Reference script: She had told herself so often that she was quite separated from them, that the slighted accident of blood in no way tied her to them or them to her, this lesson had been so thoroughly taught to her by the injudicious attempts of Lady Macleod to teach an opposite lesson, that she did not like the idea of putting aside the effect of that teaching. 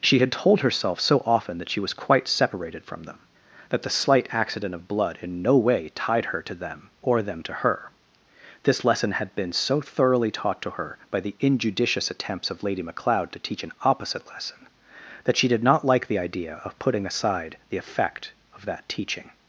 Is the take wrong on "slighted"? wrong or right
wrong